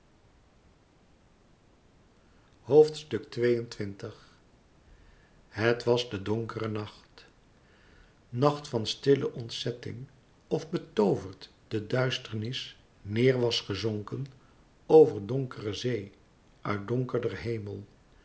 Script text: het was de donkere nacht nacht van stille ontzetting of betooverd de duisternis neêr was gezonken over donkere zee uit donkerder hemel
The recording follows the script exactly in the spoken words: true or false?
true